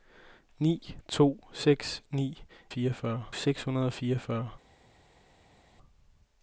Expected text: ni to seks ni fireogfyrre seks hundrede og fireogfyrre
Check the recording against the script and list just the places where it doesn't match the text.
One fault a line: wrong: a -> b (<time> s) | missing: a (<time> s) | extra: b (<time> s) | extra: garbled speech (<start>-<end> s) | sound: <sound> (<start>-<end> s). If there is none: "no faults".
no faults